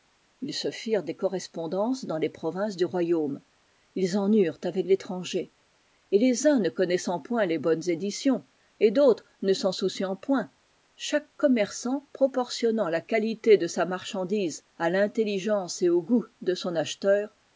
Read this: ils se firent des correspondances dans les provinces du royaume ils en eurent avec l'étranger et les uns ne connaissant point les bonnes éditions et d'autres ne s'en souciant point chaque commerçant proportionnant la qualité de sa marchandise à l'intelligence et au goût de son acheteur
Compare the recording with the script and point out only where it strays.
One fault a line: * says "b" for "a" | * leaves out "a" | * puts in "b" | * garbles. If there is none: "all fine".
all fine